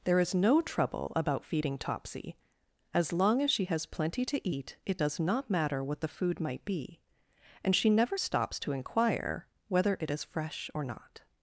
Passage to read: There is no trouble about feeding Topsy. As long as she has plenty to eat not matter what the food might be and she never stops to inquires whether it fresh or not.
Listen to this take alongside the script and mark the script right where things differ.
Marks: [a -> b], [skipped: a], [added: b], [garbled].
There is no trouble about feeding Topsy. As long as she has plenty to eat [added: it does] not matter what the food might be and she never stops to [inquires -> inquire] whether it [added: is] fresh or not.